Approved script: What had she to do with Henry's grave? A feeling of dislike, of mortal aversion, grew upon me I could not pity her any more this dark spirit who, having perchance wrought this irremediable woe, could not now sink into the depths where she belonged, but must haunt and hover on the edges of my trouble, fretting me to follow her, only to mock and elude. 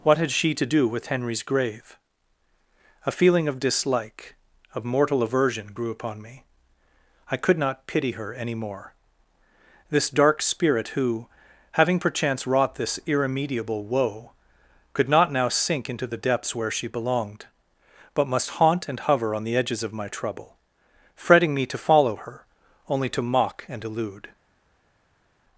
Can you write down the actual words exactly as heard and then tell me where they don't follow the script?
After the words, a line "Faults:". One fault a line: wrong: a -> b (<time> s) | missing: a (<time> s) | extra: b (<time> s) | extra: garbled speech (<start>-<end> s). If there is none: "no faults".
What had she to do with Henry's grave? A feeling of dislike, of mortal aversion, grew upon me I could not pity her any more this dark spirit who, having perchance wrought this irremediable woe, could not now sink into the depths where she belonged, but must haunt and hover on the edges of my trouble, fretting me to follow her, only to mock and elude.
Faults:
no faults